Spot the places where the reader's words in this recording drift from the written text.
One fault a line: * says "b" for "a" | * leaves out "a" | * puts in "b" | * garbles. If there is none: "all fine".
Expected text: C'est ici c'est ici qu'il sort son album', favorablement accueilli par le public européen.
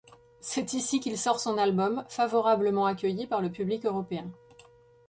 * leaves out "c'est ici"